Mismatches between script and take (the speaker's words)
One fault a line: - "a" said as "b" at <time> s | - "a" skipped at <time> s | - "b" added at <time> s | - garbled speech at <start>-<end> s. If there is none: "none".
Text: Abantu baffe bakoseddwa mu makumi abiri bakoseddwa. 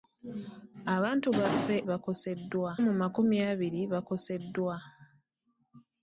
none